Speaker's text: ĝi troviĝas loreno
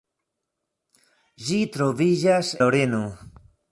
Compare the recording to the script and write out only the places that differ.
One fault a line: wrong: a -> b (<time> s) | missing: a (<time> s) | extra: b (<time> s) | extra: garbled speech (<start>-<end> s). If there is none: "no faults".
no faults